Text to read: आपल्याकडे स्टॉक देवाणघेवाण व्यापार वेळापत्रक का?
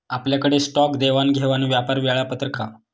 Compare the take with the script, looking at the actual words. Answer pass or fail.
pass